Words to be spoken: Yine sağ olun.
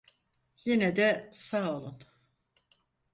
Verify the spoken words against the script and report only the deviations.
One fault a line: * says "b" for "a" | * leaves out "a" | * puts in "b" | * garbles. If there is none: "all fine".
* puts in "de"